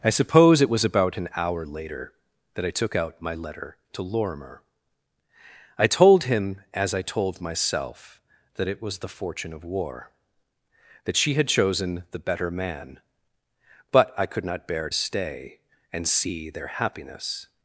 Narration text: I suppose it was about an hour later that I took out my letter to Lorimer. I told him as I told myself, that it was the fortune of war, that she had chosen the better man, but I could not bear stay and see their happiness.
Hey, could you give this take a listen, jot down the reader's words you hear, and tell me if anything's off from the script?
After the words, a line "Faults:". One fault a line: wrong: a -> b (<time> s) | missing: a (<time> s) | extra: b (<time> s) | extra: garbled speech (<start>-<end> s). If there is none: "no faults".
I suppose it was about an hour later that I took out my letter to Lorimer. I told him as I told myself, that it was the fortune of war, that she had chosen the better man, but I could not bear stay and see their happiness.
Faults:
no faults